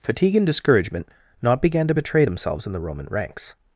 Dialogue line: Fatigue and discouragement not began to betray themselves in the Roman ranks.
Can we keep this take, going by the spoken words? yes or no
yes